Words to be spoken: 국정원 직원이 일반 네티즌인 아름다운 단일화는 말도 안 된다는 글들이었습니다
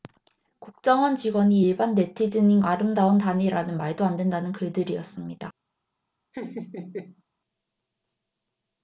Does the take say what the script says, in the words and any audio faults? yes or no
no